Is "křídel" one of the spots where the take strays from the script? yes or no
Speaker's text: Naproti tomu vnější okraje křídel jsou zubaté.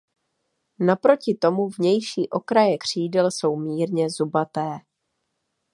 no